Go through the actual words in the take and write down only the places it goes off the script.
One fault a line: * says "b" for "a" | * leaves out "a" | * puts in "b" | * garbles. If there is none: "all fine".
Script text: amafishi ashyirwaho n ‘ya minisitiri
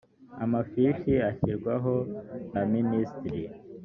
all fine